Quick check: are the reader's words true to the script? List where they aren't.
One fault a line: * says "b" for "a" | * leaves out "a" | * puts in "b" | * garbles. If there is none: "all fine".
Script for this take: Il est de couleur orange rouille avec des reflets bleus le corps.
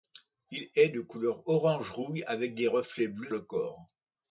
all fine